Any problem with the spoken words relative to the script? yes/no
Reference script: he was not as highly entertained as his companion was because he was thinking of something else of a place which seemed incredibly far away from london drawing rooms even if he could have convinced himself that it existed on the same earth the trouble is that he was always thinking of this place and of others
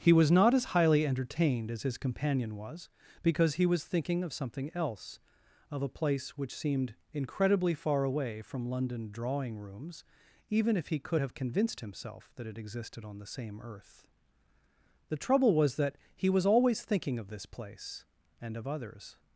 yes